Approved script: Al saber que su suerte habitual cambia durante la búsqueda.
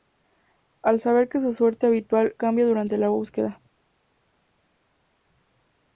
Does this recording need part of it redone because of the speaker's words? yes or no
no